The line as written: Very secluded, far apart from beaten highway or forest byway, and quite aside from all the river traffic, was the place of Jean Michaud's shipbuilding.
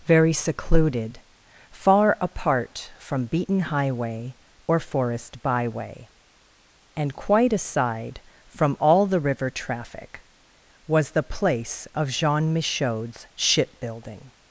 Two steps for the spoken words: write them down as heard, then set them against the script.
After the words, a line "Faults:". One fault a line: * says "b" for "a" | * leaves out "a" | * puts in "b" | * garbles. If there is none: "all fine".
Very secluded, far apart from beaten highway or forest byway, and quite aside from all the river traffic, was the place of Jean Michaud's shipbuilding.
Faults:
all fine